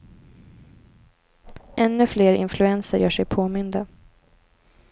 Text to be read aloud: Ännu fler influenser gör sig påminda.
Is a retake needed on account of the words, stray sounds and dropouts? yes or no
no